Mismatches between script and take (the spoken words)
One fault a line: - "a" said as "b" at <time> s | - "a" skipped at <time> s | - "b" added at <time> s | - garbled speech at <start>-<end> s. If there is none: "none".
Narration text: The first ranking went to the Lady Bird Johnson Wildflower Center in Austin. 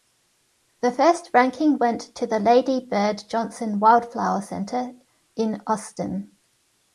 none